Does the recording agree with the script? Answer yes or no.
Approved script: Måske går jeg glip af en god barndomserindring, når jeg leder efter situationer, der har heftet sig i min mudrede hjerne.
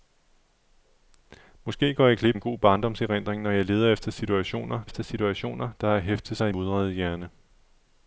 no